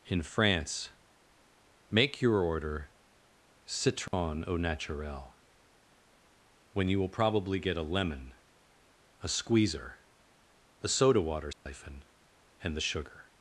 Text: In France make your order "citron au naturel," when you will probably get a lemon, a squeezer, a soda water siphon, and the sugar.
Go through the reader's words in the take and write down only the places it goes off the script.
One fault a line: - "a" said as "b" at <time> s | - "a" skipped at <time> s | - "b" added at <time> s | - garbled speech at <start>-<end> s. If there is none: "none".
none